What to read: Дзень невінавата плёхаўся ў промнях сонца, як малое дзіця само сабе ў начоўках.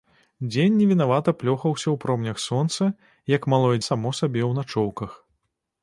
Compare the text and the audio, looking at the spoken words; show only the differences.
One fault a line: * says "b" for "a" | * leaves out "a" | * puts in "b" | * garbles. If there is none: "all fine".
* leaves out "дзіця"